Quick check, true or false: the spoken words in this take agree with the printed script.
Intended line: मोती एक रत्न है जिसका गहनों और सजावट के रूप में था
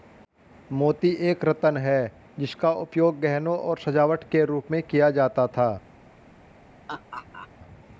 false